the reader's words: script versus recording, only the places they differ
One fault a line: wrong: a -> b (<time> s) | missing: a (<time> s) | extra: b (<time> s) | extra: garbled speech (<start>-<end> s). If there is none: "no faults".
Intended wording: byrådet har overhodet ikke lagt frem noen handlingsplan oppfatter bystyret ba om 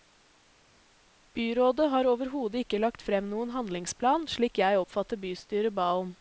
extra: slik jeg (4.3 s)